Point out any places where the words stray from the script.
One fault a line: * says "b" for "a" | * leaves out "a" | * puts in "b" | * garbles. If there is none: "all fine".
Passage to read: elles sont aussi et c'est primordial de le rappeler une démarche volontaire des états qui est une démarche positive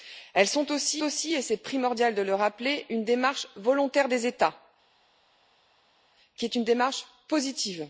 * puts in "aussi"